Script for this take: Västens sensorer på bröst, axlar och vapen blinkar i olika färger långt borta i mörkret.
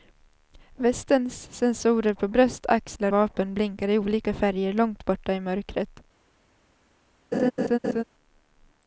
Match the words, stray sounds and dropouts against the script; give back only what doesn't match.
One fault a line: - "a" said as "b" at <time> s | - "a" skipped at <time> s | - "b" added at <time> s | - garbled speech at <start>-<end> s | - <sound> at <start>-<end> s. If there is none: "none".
- "och" skipped at 3.1 s
- laugh at 7.3-8.0 s